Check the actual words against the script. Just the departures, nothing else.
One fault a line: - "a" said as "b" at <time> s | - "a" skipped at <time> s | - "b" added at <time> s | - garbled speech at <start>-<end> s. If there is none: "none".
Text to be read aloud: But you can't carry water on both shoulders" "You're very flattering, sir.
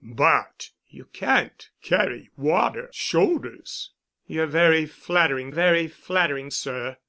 - "on both shoulders You're" said as "shoulders You're very flattering" at 2.9 s